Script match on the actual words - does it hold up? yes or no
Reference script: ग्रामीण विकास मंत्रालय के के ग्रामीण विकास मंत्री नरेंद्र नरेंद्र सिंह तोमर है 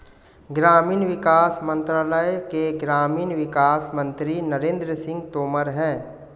no